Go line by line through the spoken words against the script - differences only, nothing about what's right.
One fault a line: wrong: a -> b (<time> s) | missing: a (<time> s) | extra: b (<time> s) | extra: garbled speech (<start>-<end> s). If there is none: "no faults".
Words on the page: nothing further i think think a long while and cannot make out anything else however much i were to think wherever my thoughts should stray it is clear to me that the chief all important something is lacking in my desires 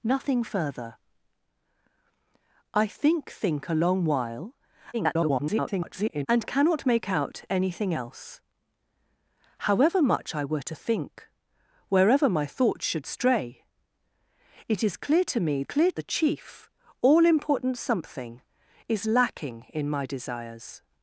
extra: garbled speech (4.9-6.3 s)
wrong: that -> clear (15.6 s)